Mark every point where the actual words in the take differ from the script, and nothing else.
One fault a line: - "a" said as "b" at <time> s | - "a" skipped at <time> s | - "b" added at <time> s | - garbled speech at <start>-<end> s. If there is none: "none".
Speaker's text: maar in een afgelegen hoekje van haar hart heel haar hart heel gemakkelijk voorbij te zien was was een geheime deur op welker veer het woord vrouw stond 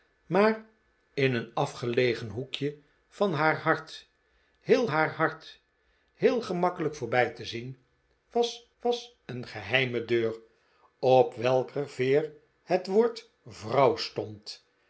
none